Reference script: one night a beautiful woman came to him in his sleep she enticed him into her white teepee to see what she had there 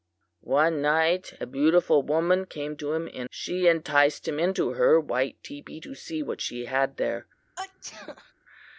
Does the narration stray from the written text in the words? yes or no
yes